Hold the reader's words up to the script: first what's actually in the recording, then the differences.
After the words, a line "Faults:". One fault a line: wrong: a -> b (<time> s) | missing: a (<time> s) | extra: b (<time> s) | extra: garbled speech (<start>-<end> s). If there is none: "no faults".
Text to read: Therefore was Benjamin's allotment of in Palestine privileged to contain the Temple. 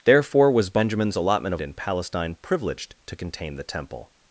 Therefore was Benjamin's allotment of in Palestine privileged to contain the Temple.
Faults:
no faults